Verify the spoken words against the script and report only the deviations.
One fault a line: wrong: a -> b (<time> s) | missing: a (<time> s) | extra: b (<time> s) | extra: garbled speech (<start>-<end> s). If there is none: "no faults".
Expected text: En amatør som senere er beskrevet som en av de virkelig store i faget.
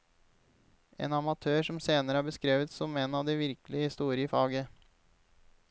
no faults